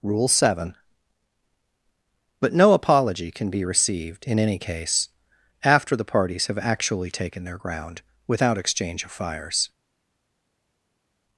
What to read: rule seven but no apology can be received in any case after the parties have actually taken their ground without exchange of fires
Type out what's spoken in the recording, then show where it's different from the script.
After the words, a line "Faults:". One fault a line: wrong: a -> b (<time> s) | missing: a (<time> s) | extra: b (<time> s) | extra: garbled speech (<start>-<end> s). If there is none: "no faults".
rule seven but no apology can be received in any case after the parties have actually taken their ground without exchange of fires
Faults:
no faults